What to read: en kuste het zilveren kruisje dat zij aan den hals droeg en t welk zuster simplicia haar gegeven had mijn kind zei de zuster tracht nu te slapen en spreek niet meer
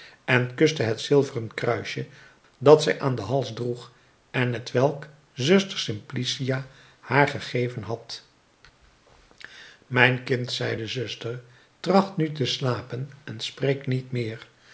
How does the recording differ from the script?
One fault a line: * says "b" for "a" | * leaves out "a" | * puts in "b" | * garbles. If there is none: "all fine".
all fine